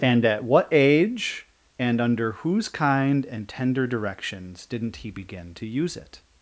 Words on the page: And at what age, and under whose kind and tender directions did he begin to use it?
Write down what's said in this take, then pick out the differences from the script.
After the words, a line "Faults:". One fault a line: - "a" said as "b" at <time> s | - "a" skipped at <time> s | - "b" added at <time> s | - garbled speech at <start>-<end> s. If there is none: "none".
And at what age, and under whose kind and tender directions didn't he begin to use it?
Faults:
- "did" said as "didn't" at 4.6 s